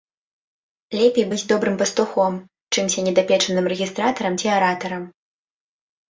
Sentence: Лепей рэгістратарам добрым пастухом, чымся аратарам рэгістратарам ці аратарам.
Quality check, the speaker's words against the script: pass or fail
fail